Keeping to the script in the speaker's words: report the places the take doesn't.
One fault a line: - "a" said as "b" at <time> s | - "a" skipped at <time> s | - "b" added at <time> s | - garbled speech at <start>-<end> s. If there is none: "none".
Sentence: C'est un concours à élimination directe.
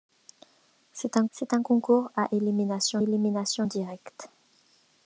- "c'est un" added at 1.3 s
- "élimination" added at 3.0 s